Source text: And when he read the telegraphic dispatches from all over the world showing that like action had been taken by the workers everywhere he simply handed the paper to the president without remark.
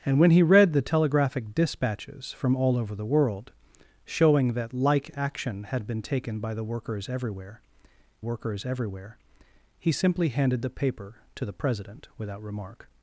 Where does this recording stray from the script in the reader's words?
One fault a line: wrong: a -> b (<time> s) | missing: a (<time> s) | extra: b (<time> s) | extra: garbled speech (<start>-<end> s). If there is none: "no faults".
extra: workers everywhere (8.2 s)